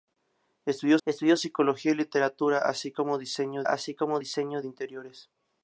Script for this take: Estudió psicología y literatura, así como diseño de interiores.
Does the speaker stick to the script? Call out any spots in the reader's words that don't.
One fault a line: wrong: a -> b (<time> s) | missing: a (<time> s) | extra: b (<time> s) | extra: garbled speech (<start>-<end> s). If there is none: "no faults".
extra: estudió (1.0 s)
extra: así como diseño (3.6 s)